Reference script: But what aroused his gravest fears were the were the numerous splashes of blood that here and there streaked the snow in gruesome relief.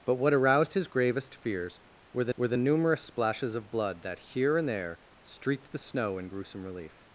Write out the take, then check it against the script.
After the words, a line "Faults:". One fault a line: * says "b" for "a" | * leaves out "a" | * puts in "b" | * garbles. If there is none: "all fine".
But what aroused his gravest fears were the were the numerous splashes of blood that here and there streaked the snow in gruesome relief.
Faults:
all fine